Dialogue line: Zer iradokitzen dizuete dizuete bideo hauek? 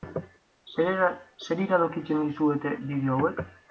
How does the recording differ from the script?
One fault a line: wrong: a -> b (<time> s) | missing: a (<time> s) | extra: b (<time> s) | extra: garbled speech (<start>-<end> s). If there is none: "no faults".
missing: dizuete (2.7 s)